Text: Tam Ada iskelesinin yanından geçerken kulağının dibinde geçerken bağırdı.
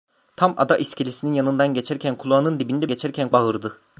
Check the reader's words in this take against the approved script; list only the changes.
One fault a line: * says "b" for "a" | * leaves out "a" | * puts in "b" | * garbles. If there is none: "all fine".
all fine